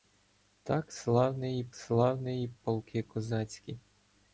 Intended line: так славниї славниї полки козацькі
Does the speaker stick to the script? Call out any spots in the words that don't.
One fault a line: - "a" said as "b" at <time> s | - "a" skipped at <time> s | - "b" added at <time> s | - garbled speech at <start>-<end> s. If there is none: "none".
none